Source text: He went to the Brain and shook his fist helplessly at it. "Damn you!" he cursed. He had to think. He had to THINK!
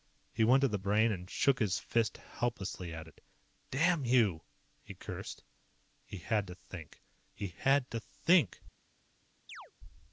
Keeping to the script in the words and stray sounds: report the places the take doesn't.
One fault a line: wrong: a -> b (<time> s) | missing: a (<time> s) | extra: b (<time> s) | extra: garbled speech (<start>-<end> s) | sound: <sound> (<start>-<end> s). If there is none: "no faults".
sound: chirp (9.5-9.7 s)